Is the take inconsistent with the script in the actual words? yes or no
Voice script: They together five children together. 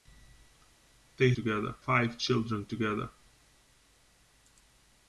no